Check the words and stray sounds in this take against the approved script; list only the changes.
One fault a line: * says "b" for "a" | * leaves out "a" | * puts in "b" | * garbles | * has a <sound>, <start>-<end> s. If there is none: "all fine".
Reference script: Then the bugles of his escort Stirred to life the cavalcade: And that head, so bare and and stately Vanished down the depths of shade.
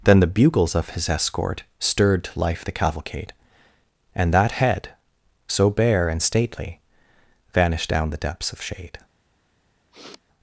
* leaves out "and"
* has a sniff, 9.9-10.2 s